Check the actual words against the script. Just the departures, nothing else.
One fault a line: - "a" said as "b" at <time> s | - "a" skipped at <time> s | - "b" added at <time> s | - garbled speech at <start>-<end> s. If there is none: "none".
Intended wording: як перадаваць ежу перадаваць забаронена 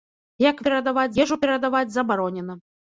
none